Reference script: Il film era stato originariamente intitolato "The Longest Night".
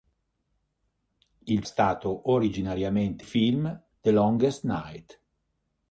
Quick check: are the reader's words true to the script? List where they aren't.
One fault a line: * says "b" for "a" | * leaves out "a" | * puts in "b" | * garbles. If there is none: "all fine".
* leaves out "film era"
* says "film" for "intitolato"